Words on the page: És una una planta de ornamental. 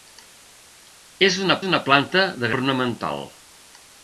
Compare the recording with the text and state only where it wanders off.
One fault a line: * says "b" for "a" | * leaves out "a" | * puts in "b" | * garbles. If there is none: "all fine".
all fine